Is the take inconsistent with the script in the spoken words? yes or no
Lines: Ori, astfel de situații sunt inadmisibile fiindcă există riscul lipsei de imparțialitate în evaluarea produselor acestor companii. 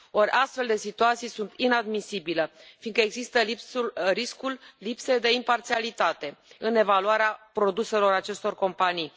no